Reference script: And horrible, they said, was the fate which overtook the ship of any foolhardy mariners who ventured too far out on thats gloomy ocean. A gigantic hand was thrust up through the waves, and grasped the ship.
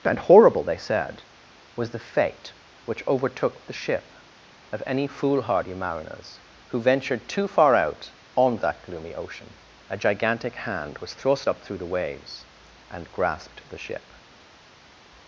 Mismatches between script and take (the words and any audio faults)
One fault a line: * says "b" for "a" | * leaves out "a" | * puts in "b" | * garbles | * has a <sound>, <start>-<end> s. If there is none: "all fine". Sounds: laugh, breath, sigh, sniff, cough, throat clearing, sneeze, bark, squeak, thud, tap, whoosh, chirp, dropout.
* says "that" for "thats"